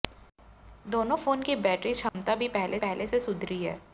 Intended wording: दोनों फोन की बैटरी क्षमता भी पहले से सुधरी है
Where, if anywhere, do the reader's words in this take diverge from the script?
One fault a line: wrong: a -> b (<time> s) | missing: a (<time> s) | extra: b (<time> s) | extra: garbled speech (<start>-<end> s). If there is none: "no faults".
extra: पहले (2.8 s)